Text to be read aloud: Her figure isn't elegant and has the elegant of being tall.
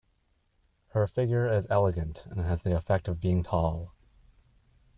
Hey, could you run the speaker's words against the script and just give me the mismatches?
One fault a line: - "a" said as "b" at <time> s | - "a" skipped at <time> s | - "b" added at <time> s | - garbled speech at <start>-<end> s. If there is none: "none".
- "isn't" said as "is" at 1.6 s
- "elegant" said as "effect" at 2.7 s